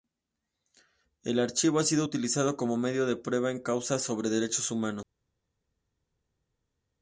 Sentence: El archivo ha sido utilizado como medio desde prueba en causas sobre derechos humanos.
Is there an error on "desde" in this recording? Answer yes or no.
yes